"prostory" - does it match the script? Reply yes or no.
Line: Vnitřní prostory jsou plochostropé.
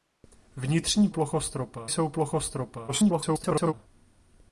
no